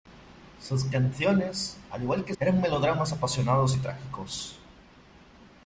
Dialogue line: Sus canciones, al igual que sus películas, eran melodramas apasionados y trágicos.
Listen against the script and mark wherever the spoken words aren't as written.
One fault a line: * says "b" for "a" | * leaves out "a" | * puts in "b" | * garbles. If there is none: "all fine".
* leaves out "sus películas"